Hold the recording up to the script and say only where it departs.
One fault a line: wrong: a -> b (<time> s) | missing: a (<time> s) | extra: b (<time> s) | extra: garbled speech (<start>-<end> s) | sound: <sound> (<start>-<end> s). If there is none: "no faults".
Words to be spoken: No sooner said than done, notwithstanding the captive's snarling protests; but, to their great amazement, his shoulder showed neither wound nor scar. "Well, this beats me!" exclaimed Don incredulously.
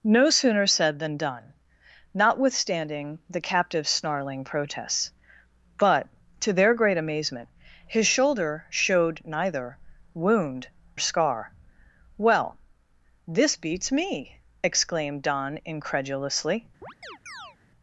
missing: nor (10.7 s)
sound: chirp (16.8-17.6 s)